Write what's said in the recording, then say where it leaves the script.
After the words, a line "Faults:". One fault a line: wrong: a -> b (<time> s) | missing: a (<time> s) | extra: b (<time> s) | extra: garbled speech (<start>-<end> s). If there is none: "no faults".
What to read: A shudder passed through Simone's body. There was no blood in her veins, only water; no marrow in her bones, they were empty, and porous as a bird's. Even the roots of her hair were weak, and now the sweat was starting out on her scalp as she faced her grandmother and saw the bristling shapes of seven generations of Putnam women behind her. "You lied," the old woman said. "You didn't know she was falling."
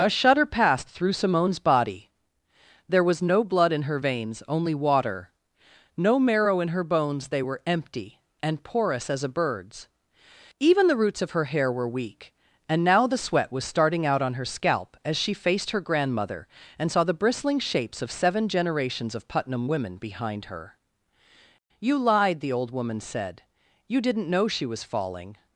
A shudder passed through Simone's body. There was no blood in her veins, only water; no marrow in her bones, they were empty, and porous as a bird's. Even the roots of her hair were weak, and now the sweat was starting out on her scalp as she faced her grandmother and saw the bristling shapes of seven generations of Putnam women behind her. "You lied," the old woman said. "You didn't know she was falling."
Faults:
no faults